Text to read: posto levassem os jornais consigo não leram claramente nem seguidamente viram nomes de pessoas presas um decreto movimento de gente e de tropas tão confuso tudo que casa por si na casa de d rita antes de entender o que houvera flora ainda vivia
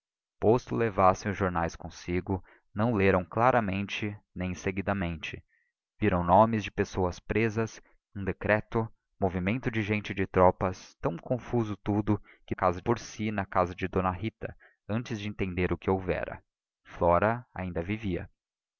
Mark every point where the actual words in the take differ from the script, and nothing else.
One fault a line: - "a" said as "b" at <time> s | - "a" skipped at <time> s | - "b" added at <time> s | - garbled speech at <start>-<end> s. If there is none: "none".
none